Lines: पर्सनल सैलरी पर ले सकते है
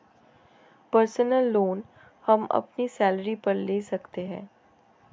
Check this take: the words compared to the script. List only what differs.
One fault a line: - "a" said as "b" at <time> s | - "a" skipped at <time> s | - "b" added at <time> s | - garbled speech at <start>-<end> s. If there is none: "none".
- "लोन हम अपनी" added at 1.5 s